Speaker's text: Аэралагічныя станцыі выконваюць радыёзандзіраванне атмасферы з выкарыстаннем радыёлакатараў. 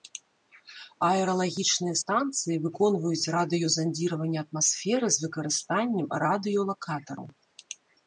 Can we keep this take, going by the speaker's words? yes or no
yes